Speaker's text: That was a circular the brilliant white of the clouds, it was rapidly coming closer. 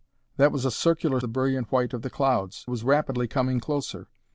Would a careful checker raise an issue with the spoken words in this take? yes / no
no